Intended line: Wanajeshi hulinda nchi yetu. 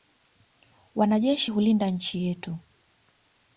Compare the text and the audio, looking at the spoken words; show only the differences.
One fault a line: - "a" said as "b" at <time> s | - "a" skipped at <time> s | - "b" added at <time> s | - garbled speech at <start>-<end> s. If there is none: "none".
none